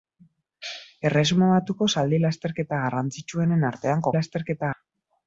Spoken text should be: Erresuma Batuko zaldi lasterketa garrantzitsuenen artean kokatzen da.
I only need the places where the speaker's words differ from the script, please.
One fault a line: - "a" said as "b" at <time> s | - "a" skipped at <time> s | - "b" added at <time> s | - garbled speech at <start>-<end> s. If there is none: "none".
- "kokatzen" said as "lasterketa" at 4.2 s